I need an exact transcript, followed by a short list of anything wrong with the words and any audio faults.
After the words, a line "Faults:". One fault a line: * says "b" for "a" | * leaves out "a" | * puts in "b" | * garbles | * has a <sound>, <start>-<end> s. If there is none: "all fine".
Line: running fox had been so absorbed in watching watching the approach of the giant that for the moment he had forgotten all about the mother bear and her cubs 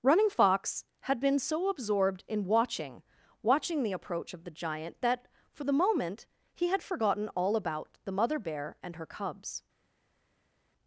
running fox had been so absorbed in watching watching the approach of the giant that for the moment he had forgotten all about the mother bear and her cubs
Faults:
all fine